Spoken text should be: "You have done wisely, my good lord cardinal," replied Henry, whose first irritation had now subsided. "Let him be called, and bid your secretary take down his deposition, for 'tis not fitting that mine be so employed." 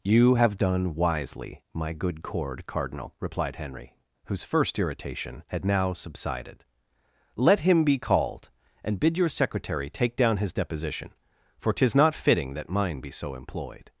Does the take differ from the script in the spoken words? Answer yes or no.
yes